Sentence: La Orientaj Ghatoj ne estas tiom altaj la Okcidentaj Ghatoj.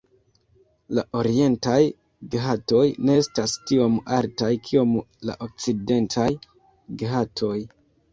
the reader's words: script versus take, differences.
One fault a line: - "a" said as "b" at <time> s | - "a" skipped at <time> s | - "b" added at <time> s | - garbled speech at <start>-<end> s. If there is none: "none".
- "kiom" added at 4.7 s